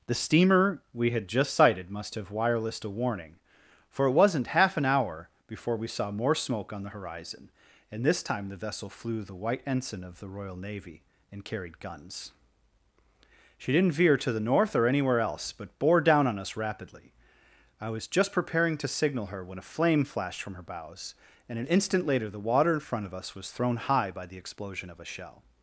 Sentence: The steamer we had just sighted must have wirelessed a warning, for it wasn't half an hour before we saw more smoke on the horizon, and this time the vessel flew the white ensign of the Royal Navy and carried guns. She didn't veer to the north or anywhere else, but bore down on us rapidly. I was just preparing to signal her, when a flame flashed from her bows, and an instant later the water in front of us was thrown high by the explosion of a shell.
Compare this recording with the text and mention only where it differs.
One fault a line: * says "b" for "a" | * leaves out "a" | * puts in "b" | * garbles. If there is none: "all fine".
all fine